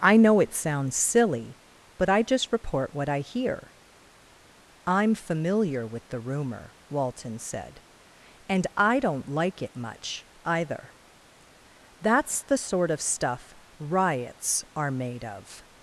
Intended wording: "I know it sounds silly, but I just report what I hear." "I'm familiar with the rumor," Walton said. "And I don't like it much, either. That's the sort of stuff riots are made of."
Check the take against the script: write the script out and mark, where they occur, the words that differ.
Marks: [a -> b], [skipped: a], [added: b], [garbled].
"I know it sounds silly, but I just report what I hear." "I'm familiar with the rumor," Walton said. "And I don't like it much, either. That's the sort of stuff riots are made of."